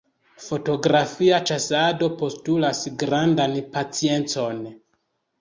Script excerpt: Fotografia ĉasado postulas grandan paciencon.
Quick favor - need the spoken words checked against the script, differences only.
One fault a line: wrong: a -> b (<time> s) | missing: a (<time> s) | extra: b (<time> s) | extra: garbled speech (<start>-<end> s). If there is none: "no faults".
no faults